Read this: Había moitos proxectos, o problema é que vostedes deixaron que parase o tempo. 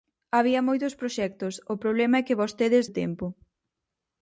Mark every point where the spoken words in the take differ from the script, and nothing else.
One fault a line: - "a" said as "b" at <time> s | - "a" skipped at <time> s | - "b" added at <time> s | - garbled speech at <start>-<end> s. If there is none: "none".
- "deixaron que parase" skipped at 2.9 s